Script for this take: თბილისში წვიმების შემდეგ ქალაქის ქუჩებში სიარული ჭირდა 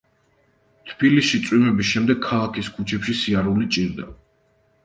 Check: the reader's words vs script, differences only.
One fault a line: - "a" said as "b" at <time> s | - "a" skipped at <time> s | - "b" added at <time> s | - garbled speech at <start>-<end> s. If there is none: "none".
none